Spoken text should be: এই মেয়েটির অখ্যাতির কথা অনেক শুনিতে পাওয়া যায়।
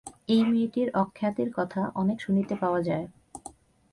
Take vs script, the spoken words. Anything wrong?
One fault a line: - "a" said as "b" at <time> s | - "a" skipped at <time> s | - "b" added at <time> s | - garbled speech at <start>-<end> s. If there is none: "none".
none